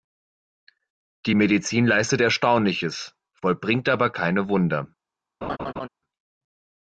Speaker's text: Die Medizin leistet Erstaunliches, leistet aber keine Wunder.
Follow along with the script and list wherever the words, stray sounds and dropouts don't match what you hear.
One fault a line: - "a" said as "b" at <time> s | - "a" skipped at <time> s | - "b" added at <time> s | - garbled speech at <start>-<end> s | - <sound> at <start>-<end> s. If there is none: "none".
- "leistet" said as "vollbringt" at 3.3 s
- laugh at 5.4-5.9 s